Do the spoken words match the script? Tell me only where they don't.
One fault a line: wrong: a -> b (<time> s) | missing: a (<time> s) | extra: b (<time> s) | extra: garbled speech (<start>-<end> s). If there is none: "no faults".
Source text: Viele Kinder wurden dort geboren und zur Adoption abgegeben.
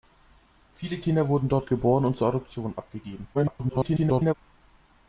extra: garbled speech (3.3-4.3 s)